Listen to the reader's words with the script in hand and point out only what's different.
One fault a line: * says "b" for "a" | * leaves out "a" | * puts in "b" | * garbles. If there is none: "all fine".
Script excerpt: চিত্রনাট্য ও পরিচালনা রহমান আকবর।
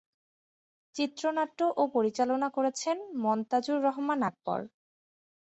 * puts in "করেছেন মনতাজুর"